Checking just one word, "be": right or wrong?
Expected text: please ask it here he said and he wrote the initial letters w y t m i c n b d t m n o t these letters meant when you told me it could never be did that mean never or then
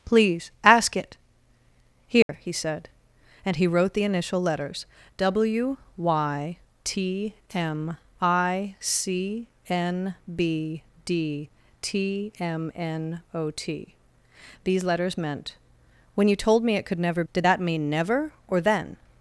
wrong